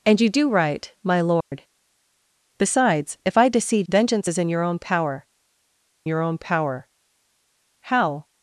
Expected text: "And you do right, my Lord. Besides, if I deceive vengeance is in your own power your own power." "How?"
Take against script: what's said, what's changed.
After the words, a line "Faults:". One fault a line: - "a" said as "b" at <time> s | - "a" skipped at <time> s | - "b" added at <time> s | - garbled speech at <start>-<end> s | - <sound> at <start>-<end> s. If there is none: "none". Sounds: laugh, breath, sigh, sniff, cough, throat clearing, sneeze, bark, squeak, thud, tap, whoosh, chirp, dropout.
"And you do right, my Lord. Besides, if I deceive vengeance is in your own power your own power." "How?"
Faults:
- dropout at 1.4-1.5 s